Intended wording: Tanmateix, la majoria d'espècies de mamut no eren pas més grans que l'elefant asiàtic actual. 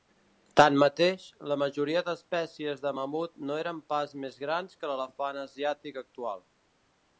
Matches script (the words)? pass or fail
pass